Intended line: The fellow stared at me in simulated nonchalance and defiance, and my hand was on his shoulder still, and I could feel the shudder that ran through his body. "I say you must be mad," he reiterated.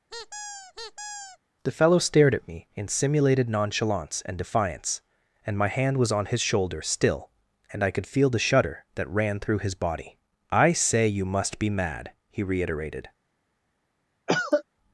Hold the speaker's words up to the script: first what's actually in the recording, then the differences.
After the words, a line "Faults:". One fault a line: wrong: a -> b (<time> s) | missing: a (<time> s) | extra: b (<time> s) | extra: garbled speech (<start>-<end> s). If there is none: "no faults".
The fellow stared at me in simulated nonchalance and defiance, and my hand was on his shoulder still, and I could feel the shudder that ran through his body. "I say you must be mad," he reiterated.
Faults:
no faults